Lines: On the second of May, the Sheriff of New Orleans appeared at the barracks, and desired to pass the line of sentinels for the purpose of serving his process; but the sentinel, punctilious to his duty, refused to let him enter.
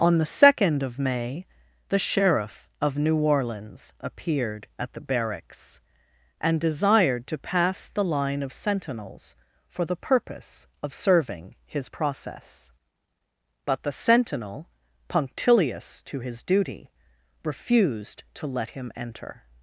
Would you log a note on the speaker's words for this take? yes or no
no